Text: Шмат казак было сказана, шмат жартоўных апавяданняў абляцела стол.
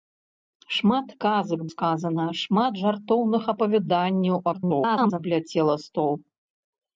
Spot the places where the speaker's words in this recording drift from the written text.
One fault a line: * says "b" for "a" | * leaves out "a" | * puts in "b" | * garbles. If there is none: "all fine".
* leaves out "было"
* garbles